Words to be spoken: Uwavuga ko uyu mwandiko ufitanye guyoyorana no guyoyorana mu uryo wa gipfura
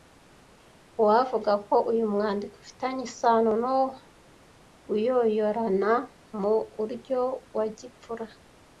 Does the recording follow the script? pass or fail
fail